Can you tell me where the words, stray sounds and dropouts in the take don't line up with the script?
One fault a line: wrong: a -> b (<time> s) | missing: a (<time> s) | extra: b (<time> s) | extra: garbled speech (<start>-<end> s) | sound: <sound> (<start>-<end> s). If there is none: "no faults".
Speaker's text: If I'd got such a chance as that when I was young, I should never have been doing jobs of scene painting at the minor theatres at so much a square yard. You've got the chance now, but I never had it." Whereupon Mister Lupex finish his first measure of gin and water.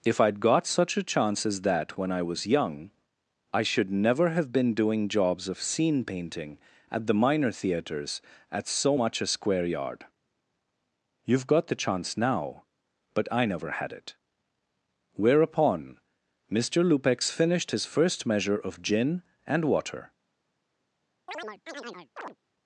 wrong: finish -> finished (17.3 s)
sound: chirp (21.3-22.4 s)